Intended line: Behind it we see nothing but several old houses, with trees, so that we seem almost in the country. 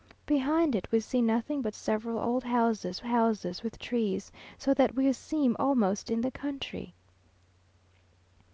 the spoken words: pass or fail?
fail